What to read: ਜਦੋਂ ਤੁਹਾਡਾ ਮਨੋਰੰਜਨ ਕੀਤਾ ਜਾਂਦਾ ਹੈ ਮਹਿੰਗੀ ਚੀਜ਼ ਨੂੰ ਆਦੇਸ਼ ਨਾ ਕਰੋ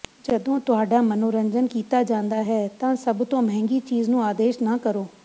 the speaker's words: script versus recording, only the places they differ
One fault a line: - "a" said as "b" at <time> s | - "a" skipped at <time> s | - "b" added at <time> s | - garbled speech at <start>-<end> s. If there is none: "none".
- "ਤਾਂ ਸਭ ਤੋਂ" added at 2.8 s